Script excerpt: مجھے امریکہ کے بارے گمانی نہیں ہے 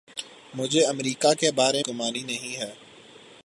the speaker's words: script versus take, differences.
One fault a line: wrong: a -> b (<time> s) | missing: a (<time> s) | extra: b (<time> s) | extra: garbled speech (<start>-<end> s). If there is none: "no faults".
no faults